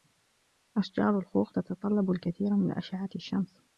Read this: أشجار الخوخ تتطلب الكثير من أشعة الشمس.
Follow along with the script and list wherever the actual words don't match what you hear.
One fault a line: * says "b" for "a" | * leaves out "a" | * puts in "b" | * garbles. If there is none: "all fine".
all fine